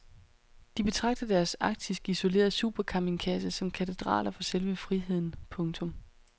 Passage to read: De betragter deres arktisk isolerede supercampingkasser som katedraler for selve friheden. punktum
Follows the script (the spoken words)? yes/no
yes